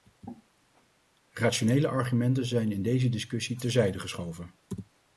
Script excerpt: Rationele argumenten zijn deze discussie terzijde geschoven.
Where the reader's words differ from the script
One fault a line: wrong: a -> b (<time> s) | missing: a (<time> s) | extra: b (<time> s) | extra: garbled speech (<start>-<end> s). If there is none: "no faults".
extra: in (2.7 s)